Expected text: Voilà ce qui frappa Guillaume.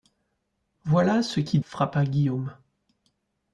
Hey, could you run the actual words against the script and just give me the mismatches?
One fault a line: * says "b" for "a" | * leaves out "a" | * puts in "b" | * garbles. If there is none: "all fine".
all fine